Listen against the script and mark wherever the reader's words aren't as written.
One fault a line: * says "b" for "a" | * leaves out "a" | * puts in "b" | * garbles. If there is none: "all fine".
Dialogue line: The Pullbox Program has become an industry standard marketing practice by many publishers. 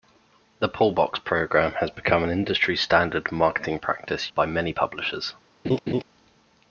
all fine